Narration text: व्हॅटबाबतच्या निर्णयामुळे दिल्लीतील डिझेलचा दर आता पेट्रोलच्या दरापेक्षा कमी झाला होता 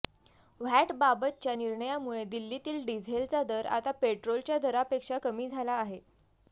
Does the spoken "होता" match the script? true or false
false